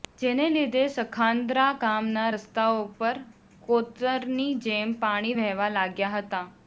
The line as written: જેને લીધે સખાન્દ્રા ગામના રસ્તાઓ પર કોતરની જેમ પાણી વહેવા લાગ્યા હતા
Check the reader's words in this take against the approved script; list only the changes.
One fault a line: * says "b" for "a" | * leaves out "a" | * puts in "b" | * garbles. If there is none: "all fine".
all fine